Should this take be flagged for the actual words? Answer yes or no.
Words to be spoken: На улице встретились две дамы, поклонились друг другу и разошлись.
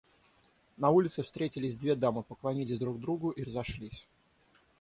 no